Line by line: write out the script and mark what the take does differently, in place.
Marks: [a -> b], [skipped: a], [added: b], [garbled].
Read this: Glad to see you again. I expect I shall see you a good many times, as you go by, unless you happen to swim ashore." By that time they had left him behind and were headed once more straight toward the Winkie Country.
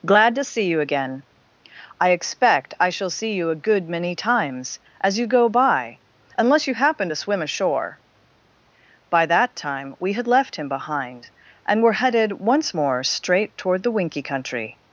Glad to see you again. I expect I shall see you a good many times, as you go by, unless you happen to swim ashore." By that time [they -> we] had left him behind and were headed once more straight toward the Winkie Country.